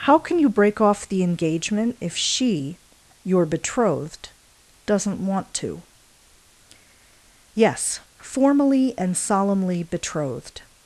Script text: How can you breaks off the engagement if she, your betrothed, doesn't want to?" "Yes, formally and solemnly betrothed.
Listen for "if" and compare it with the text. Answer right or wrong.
right